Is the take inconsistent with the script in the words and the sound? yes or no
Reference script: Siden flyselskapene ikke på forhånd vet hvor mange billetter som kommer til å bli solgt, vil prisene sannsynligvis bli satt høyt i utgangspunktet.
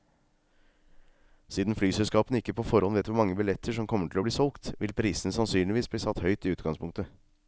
no